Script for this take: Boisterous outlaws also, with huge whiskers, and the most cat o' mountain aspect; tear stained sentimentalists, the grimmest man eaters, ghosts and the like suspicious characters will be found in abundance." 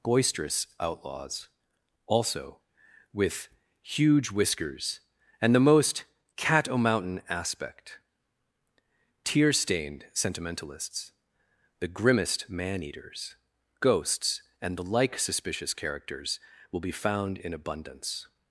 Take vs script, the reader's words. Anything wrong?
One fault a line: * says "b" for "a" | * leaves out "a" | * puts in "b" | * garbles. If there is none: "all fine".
all fine